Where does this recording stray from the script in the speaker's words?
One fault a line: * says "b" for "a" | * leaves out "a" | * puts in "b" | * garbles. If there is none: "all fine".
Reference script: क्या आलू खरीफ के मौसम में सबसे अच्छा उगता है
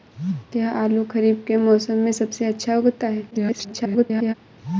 * garbles